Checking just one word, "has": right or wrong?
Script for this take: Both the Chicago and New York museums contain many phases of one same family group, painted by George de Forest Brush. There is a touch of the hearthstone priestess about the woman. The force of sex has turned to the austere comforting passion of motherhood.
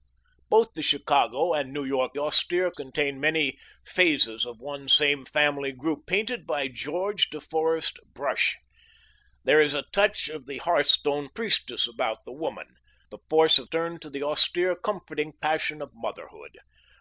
wrong